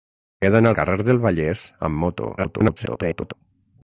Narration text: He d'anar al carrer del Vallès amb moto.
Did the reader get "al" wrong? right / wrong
wrong